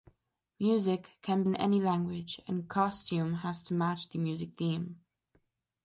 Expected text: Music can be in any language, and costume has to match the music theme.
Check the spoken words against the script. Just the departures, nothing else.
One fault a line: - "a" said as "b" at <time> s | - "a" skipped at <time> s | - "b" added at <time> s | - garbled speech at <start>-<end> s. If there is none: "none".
- "be" skipped at 1.4 s